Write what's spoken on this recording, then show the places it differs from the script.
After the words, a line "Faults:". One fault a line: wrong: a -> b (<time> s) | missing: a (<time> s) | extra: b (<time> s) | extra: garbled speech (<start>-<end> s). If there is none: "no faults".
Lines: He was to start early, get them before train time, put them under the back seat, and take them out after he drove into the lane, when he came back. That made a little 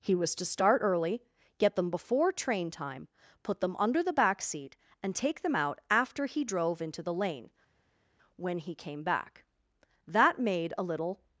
He was to start early, get them before train time, put them under the back seat, and take them out after he drove into the lane, when he came back. That made a little
Faults:
no faults